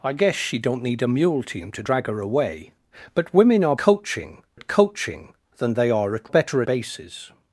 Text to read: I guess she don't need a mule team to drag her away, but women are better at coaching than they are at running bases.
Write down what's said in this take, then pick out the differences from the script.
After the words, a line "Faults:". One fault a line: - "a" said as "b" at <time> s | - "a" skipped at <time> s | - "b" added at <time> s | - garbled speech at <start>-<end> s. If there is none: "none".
I guess she don't need a mule team to drag her away, but women are coaching at coaching than they are at better bases.
Faults:
- "better" said as "coaching" at 3.8 s
- "running" said as "better" at 6.3 s